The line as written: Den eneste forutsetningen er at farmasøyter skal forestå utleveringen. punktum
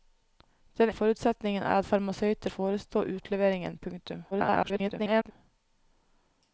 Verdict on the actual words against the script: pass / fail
fail